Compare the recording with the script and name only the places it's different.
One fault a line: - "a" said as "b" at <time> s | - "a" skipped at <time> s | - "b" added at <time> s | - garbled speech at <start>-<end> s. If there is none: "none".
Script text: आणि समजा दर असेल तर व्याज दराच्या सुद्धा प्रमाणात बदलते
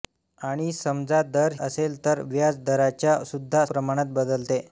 none